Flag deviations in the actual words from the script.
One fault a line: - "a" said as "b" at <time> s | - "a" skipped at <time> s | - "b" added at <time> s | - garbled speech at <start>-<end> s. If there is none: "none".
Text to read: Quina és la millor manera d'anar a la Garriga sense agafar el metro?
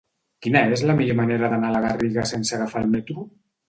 none